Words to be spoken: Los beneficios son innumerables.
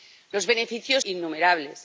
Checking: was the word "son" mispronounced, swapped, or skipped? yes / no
yes